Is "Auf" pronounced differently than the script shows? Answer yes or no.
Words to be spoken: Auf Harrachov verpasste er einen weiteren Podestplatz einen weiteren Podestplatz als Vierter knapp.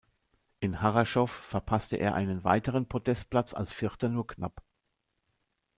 yes